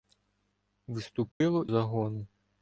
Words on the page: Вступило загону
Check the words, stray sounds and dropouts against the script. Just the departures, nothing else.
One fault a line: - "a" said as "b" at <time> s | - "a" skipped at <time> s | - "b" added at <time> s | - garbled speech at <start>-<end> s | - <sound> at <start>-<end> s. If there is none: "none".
- dropout at 1.3-1.4 s